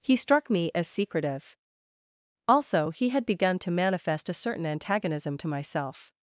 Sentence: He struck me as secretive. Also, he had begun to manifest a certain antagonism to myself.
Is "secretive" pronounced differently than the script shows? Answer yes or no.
no